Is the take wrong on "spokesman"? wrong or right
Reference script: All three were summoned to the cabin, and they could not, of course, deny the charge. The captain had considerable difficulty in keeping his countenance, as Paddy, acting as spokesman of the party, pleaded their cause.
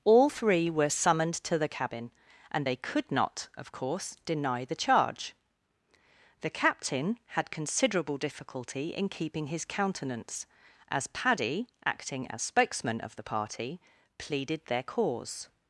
right